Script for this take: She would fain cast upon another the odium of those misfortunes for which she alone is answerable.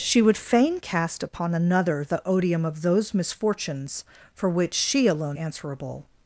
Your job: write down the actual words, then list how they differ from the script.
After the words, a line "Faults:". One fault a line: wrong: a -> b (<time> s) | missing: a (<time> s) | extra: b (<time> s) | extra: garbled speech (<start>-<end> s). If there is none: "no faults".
She would fain cast upon another the odium of those misfortunes for which she alone answerable.
Faults:
missing: is (5.4 s)